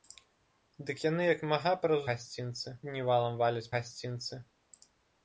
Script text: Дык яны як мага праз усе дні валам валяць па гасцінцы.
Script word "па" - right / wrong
wrong